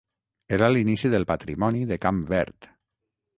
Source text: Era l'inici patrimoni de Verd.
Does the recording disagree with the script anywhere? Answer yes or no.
yes